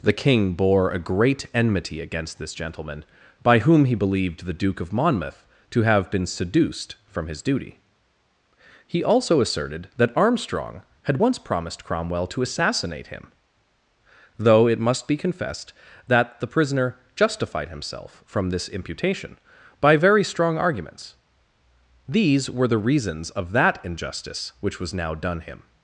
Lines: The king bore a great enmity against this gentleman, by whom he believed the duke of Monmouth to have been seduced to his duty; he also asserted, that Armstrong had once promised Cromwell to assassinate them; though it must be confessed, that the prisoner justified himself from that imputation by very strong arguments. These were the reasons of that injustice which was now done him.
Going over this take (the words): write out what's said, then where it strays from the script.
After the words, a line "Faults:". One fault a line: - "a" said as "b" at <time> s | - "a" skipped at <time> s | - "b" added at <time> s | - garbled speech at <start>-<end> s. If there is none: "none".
The king bore a great enmity against this gentleman, by whom he believed the duke of Monmouth to have been seduced from his duty; he also asserted, that Armstrong had once promised Cromwell to assassinate him; though it must be confessed, that the prisoner justified himself from this imputation by very strong arguments. These were the reasons of that injustice which was now done him.
Faults:
- "to" said as "from" at 7.0 s
- "them" said as "him" at 13.1 s
- "that" said as "this" at 18.5 s